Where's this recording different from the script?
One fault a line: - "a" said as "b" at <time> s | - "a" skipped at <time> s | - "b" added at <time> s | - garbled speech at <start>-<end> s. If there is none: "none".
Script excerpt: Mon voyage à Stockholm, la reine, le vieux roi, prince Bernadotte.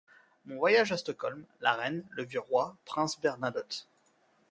none